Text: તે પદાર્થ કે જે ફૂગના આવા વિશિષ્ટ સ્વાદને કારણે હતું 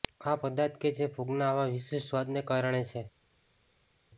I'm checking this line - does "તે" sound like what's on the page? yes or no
no